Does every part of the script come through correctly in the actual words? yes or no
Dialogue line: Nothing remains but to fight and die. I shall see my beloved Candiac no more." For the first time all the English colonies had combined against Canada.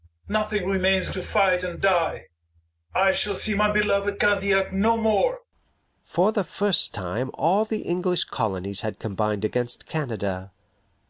no